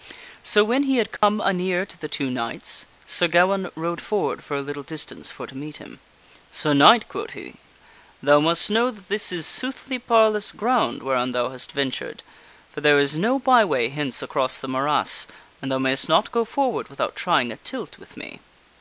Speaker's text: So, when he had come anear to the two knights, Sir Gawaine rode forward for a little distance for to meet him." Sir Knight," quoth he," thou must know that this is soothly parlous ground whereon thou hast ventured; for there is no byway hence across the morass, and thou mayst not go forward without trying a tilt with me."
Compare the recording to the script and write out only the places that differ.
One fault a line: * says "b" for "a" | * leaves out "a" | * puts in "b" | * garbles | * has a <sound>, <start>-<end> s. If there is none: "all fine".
* has a dropout, 1.2-1.2 s